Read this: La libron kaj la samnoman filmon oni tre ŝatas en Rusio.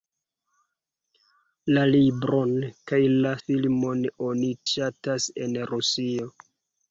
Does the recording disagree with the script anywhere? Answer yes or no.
yes